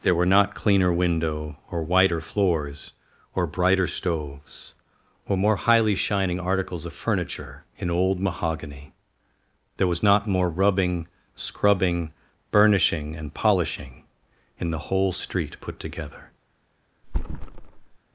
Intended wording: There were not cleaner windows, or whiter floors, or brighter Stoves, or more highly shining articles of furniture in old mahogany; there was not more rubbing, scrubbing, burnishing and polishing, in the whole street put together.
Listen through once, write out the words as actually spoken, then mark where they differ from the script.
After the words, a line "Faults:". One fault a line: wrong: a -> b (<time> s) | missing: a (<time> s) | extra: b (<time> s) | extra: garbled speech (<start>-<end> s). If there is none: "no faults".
There were not cleaner window, or whiter floors, or brighter Stoves, or more highly shining articles of furniture in old mahogany; there was not more rubbing, scrubbing, burnishing and polishing, in the whole street put together.
Faults:
wrong: windows -> window (0.9 s)